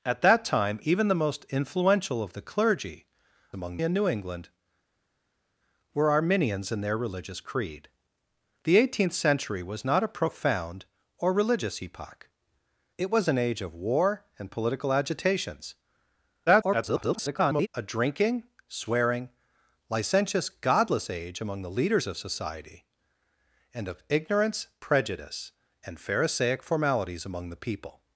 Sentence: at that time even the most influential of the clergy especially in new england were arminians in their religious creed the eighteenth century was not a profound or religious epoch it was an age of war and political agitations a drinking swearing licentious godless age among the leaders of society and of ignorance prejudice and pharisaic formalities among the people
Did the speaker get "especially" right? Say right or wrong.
wrong